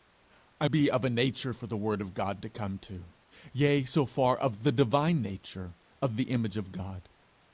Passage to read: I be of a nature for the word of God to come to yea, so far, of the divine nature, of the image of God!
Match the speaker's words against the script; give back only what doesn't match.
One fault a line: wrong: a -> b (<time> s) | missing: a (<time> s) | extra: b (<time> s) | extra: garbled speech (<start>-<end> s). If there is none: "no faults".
no faults